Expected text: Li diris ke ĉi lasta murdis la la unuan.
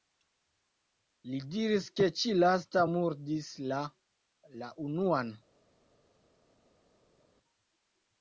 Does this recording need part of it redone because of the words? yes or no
no